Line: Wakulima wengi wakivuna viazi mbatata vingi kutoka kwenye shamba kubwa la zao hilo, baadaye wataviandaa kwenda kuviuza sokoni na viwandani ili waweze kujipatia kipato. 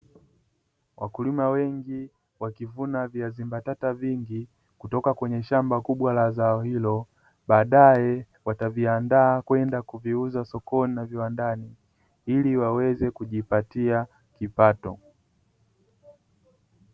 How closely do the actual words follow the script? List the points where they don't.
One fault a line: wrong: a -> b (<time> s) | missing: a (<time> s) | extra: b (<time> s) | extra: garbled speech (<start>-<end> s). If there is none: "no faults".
no faults